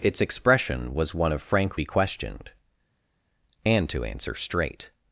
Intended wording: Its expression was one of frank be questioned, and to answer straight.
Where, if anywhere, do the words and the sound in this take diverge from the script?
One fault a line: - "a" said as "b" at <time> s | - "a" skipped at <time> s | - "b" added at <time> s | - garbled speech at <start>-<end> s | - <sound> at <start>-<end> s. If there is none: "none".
none